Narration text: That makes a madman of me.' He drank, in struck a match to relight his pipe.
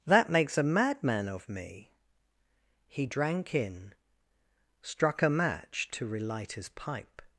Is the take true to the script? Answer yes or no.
yes